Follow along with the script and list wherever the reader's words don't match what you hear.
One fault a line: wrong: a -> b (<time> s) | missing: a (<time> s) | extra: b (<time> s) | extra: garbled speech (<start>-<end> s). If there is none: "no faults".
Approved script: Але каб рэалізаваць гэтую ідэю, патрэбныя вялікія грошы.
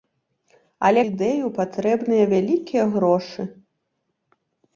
missing: каб рэалізаваць гэтую (1.0 s)